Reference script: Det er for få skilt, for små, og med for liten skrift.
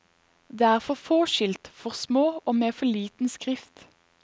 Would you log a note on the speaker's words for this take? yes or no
no